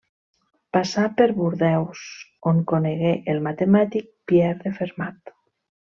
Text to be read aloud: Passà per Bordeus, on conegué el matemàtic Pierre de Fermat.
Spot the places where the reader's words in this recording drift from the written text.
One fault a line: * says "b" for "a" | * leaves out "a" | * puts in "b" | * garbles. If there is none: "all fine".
all fine